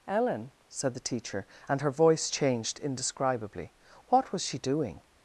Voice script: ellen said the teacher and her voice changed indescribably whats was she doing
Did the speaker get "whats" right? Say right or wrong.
wrong